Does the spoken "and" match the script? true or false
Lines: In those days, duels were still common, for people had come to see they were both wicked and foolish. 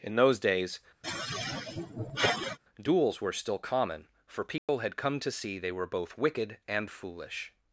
true